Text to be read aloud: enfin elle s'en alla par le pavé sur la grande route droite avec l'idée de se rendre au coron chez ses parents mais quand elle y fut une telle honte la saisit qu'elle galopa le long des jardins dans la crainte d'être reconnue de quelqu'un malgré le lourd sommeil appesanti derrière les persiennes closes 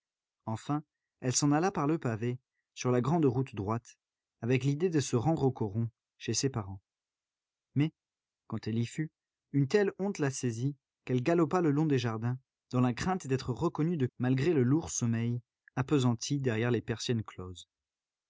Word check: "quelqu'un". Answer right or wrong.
wrong